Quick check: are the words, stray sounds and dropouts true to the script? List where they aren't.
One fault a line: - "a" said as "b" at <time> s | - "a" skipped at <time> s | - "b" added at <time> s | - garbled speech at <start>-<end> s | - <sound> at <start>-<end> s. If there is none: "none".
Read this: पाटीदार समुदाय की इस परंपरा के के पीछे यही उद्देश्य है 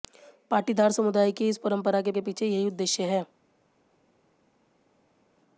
none